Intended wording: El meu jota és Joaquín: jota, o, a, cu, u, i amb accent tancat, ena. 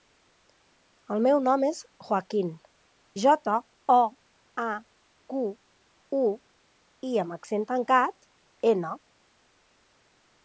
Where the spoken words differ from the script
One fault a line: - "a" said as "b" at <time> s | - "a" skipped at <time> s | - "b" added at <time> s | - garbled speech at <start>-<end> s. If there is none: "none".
- "jota" said as "nom" at 1.5 s